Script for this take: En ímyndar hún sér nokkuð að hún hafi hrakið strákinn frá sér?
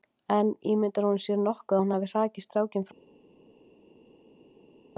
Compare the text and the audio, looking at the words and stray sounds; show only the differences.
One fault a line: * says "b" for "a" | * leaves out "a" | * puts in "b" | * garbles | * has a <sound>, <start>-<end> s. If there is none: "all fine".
all fine